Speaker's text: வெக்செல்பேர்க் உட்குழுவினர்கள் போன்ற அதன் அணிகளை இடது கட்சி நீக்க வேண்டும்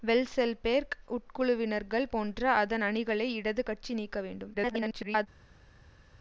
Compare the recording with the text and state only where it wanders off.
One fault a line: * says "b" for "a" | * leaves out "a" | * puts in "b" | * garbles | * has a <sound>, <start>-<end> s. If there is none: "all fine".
* garbles